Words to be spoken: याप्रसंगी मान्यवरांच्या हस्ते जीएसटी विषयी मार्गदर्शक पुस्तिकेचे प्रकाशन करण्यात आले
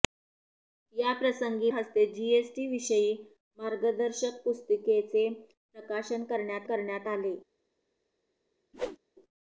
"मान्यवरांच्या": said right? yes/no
no